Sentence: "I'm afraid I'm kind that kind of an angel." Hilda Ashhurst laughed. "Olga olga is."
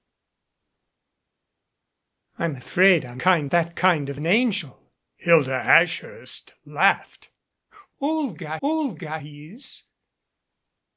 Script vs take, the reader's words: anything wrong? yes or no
no